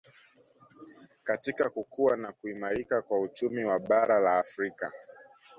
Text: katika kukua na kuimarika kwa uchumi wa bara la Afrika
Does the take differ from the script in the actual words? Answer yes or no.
no